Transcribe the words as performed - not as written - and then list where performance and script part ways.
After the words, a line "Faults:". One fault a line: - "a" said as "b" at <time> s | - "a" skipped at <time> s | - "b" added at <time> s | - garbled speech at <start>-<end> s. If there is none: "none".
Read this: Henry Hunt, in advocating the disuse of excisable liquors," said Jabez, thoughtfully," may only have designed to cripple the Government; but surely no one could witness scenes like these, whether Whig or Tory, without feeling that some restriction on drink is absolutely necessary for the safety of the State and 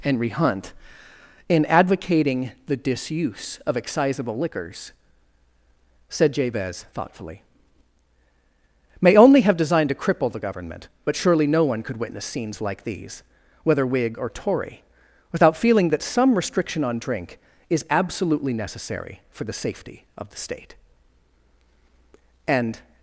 Henry Hunt, in advocating the disuse of excisable liquors," said Jabez, thoughtfully," may only have designed to cripple the Government; but surely no one could witness scenes like these, whether Whig or Tory, without feeling that some restriction on drink is absolutely necessary for the safety of the State and
Faults:
none